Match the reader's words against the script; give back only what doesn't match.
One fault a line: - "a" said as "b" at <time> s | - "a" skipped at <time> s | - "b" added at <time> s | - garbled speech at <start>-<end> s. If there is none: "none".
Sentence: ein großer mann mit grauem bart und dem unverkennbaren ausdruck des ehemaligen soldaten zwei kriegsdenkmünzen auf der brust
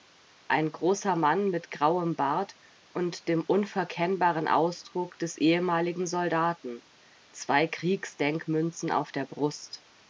none